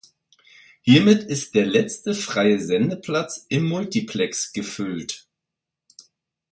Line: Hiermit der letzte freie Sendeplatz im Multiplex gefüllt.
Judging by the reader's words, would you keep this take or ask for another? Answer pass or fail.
fail